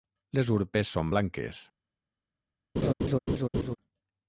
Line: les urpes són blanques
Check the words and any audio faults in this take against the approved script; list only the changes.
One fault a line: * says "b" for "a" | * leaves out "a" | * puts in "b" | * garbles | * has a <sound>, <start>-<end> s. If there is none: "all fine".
* has a laugh, 2.8-3.8 s